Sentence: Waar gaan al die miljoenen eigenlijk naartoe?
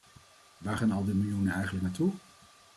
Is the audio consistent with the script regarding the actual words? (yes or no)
yes